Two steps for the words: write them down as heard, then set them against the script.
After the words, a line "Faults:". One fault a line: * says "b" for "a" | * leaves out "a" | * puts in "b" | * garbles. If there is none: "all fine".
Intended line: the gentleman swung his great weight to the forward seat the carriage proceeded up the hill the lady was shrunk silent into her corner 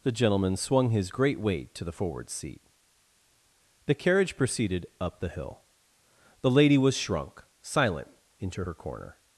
the gentleman swung his great weight to the forward seat the carriage proceeded up the hill the lady was shrunk silent into her corner
Faults:
all fine